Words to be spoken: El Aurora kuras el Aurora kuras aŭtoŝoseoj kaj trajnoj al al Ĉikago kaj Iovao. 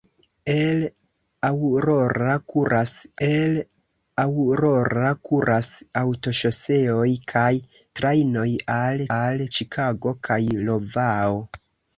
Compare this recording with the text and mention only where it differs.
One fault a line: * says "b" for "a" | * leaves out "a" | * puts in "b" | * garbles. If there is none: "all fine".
all fine